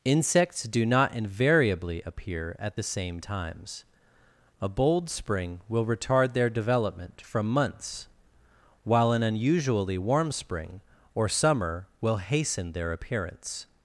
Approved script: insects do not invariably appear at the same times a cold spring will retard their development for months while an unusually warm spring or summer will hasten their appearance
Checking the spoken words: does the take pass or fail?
fail